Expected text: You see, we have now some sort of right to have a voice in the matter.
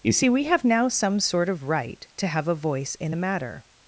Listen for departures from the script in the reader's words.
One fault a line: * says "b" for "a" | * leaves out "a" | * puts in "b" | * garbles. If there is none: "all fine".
all fine